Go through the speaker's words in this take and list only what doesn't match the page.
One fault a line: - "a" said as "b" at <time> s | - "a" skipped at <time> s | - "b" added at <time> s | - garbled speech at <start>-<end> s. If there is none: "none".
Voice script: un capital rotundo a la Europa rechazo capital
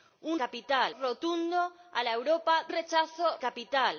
none